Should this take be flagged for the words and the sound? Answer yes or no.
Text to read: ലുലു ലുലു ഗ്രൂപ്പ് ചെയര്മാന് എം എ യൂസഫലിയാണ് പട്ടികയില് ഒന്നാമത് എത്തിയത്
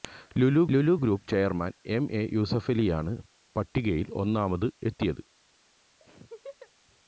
yes